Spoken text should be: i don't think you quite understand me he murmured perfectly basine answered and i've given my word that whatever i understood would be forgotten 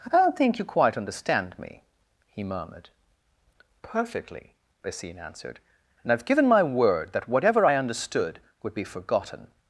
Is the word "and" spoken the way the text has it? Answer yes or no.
yes